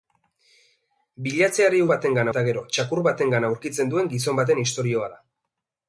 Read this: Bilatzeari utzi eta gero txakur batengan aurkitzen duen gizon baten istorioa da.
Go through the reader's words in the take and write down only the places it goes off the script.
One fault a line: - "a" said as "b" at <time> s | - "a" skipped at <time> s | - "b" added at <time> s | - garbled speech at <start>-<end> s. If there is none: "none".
- "utzi" said as "batengan" at 1.9 s